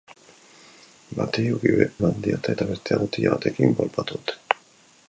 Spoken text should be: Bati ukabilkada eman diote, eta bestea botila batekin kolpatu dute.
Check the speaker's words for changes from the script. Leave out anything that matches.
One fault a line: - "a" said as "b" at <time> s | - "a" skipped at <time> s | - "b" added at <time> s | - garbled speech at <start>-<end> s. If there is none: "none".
- "ukabilkada" skipped at 1.4 s